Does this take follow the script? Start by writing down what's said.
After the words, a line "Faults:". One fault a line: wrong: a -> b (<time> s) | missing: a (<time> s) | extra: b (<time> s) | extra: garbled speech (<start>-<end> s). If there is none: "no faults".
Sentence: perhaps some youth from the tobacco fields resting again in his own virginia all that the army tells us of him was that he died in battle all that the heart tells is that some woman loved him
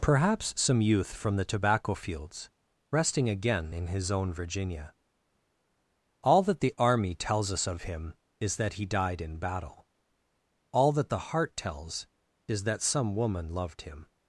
perhaps some youth from the tobacco fields resting again in his own virginia all that the army tells us of him is that he died in battle all that the heart tells is that some woman loved him
Faults:
wrong: was -> is (8.4 s)